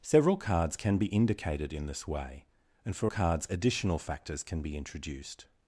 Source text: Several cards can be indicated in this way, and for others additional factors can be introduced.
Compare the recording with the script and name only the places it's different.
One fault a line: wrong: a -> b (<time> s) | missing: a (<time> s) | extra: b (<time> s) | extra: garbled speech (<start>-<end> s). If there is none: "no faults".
wrong: others -> cards (3.0 s)